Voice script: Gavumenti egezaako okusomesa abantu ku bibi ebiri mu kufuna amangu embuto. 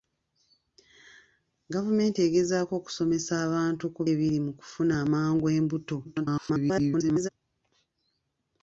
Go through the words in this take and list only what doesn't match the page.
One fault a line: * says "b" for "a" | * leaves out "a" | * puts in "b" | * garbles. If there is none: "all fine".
* leaves out "bibi"
* garbles